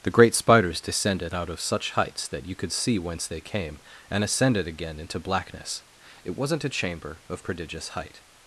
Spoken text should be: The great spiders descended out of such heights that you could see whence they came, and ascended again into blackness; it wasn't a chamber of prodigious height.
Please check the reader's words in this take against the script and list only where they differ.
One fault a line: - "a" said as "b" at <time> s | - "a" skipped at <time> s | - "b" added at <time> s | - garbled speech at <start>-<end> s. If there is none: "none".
none